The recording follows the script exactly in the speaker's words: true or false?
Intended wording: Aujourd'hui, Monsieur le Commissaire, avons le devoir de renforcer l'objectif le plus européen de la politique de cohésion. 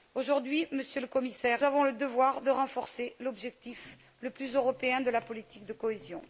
true